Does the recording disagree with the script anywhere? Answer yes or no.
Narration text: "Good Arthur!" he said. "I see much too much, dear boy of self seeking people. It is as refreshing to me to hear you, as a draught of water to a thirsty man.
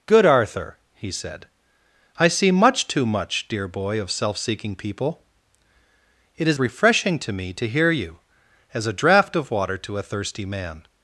yes